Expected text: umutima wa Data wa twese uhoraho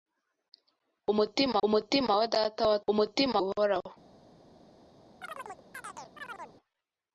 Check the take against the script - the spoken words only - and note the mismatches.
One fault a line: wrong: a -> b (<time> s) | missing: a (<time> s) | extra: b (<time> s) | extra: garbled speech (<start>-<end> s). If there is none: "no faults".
extra: umutima (1.7 s)
wrong: twese -> umutima (2.9 s)